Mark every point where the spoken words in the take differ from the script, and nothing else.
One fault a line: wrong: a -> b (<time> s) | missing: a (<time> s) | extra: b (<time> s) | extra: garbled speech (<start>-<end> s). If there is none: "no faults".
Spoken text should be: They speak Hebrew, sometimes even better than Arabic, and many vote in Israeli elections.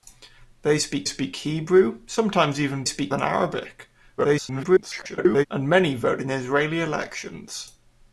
extra: speak (1.1 s)
wrong: better -> speak (2.9 s)
extra: garbled speech (4.2-5.5 s)